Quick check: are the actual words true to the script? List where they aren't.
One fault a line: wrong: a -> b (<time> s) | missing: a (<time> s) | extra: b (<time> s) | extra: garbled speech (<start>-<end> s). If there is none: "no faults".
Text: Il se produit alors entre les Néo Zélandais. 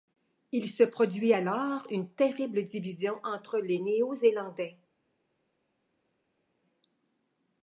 extra: une terrible division (1.9 s)